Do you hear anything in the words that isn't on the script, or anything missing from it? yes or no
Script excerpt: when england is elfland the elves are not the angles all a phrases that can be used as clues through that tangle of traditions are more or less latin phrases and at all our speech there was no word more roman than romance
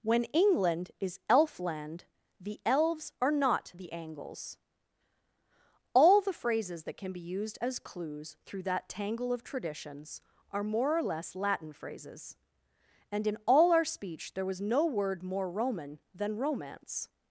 yes